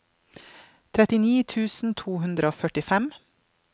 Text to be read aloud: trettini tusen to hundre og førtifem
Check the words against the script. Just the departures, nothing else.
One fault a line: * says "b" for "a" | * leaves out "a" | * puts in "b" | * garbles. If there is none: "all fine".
all fine